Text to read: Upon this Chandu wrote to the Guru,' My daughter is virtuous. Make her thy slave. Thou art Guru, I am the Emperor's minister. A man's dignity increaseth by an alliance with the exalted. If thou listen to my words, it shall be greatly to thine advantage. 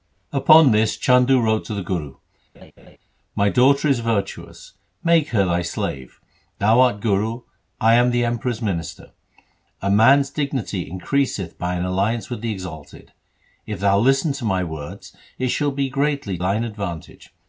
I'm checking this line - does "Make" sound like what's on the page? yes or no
yes